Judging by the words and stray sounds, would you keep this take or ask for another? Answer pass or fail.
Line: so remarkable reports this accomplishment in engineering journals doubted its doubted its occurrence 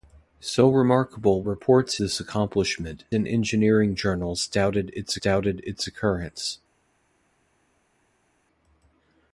pass